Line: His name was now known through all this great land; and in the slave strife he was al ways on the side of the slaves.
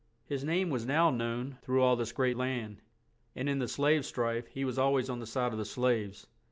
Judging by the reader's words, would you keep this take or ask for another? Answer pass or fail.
pass